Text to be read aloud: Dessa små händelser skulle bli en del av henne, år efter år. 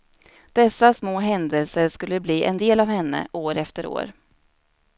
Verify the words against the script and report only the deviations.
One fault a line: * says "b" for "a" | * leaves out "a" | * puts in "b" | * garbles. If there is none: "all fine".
all fine